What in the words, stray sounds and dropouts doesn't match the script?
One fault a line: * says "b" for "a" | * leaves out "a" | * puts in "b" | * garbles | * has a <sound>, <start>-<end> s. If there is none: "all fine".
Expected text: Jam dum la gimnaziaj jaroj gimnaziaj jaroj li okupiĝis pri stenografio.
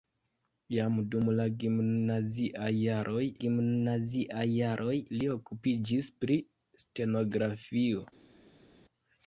all fine